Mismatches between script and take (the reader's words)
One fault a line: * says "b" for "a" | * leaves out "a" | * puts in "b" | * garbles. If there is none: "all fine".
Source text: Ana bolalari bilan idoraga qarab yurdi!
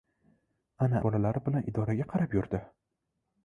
all fine